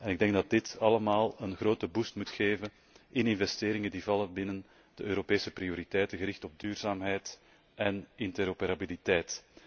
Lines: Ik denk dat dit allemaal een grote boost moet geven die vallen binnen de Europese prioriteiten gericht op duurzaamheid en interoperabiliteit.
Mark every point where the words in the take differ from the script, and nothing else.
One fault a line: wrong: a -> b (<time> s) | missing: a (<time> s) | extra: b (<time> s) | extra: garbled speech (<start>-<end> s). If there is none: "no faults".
extra: in investeringen (3.1 s)